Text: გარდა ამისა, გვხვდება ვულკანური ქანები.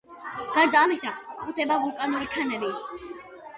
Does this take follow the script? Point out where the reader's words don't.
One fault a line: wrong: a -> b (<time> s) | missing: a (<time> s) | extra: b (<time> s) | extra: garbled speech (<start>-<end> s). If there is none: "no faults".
no faults